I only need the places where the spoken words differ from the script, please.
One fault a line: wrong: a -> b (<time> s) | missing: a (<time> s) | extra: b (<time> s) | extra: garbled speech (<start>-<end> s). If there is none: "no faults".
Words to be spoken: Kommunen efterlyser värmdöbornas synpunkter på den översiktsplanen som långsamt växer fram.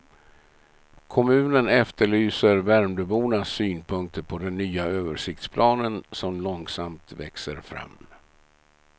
extra: nya (4.6 s)